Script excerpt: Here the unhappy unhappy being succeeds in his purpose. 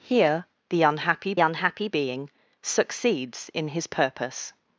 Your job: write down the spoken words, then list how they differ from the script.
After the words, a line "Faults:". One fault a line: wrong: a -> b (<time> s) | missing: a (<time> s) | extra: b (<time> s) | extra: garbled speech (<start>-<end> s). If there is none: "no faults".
Here the unhappy unhappy being succeeds in his purpose.
Faults:
no faults